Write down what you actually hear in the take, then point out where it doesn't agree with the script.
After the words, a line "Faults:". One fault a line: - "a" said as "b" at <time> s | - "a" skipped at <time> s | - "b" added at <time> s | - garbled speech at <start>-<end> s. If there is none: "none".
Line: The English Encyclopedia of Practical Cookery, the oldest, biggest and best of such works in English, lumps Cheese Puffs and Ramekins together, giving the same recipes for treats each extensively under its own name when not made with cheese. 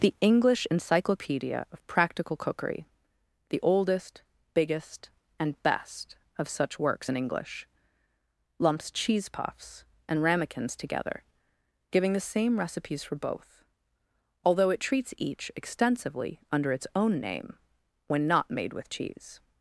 The English Encyclopedia of Practical Cookery, the oldest, biggest and best of such works in English, lumps Cheese Puffs and Ramekins together, giving the same recipes for both, although it treats each extensively under its own name when not made with cheese.
Faults:
- "both although it" added at 13.1 s